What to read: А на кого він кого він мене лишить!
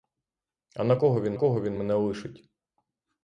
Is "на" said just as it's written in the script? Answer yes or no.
yes